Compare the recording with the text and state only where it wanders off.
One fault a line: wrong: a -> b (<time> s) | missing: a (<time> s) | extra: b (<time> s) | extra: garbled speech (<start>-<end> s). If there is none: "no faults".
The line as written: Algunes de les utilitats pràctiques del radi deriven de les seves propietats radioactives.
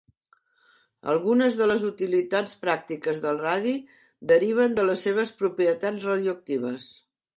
no faults